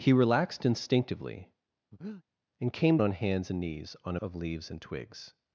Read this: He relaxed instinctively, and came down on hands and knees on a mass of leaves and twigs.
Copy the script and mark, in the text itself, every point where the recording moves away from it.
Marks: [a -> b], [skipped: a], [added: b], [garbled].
He relaxed instinctively, and came [skipped: down] on hands and knees on a [skipped: mass] of leaves and twigs.